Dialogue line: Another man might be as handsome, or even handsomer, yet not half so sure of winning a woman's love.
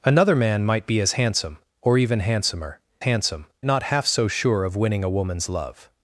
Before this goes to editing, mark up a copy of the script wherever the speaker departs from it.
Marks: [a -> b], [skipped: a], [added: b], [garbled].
Another man might be as handsome, or even handsomer, [yet -> handsome] not half so sure of winning a woman's love.